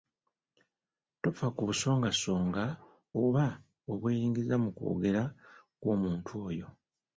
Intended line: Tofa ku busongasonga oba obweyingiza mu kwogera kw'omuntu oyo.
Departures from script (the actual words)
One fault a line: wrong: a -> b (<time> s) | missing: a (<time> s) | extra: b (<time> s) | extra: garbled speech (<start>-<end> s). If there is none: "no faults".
no faults